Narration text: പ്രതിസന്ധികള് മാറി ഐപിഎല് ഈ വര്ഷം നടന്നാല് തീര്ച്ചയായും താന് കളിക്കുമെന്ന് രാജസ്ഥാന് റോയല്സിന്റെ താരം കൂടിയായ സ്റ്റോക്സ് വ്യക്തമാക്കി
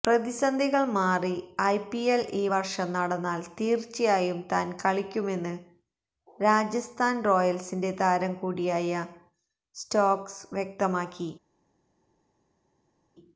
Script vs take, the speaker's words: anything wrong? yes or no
no